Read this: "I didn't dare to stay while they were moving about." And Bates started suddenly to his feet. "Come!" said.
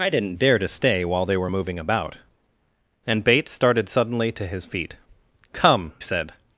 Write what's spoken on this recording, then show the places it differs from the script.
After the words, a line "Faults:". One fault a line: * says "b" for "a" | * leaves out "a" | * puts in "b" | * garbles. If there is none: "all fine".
"I didn't dare to stay while they were moving about." And Bates started suddenly to his feet. "Come!" said.
Faults:
all fine